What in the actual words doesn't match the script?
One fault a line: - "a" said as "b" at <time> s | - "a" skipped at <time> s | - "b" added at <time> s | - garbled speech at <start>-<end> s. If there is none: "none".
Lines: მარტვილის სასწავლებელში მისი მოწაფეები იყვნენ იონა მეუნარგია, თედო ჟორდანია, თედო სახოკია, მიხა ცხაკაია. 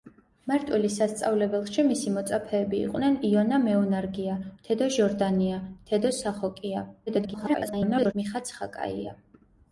- garbled speech at 7.1-8.1 s